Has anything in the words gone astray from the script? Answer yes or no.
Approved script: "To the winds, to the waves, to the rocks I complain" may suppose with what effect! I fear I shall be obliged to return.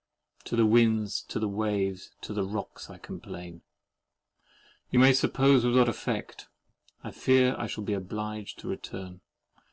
yes